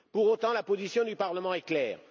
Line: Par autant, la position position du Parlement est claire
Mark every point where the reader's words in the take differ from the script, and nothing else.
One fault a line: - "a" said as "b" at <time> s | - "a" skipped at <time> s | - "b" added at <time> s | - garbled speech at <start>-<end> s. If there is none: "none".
- "Par" said as "Pour" at 0.1 s
- "position" skipped at 1.0 s